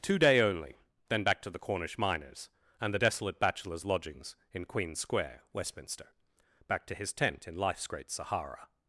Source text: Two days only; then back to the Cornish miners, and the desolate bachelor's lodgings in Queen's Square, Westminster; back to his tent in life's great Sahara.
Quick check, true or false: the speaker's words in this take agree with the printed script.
false